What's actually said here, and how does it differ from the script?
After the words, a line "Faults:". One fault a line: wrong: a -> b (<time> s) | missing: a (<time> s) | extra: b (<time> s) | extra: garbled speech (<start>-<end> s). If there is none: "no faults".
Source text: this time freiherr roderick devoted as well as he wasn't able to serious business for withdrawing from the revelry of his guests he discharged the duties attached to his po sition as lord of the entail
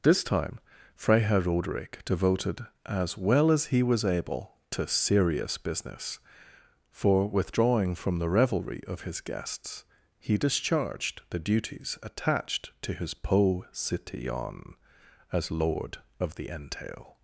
this time freiherr roderick devoted as well as he was able to serious business for withdrawing from the revelry of his guests he discharged the duties attached to his po sition as lord of the entail
Faults:
wrong: wasn't -> was (3.8 s)